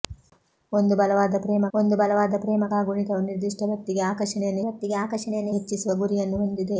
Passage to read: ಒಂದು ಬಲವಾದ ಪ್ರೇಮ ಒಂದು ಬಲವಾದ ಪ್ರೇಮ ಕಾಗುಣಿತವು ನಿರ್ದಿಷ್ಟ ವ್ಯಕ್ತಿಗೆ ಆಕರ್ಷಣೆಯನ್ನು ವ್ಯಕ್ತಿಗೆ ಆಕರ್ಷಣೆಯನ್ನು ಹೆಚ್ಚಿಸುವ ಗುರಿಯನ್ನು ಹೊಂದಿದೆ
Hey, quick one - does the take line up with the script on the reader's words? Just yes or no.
yes